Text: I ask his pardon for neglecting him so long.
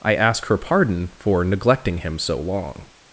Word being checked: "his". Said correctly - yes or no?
no